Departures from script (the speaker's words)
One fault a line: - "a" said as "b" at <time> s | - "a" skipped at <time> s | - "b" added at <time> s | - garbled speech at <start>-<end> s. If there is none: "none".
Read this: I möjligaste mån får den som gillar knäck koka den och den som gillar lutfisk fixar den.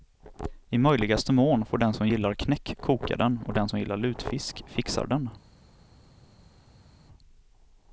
none